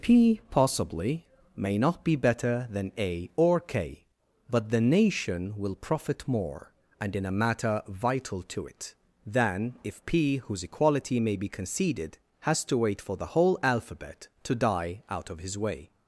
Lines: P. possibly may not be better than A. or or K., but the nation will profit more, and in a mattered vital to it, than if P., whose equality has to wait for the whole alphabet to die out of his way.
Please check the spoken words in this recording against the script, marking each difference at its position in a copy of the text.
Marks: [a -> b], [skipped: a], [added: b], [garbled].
P. possibly may not be better than A. or [skipped: or] K., but the nation will profit more, and in a [mattered -> matter] vital to it, than if P., whose equality [added: may be conceded] has to wait for the whole alphabet to die out of his way.